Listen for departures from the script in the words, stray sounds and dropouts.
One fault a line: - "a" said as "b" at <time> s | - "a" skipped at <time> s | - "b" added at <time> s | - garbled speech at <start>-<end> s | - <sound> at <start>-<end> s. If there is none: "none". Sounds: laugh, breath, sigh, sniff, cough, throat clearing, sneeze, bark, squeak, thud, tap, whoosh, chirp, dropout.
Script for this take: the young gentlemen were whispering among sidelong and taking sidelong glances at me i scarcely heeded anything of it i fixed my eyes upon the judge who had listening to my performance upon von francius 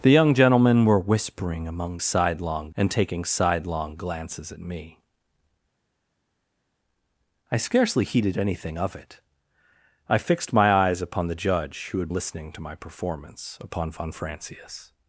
none